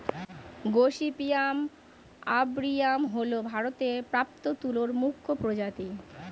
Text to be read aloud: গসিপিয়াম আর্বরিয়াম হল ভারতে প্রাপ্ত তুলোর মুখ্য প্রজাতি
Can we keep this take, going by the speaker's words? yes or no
yes